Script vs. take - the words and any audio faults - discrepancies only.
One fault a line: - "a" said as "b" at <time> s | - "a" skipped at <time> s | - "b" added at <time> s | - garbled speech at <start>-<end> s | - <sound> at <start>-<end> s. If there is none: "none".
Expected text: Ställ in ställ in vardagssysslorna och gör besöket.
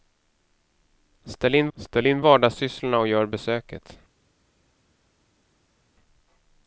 none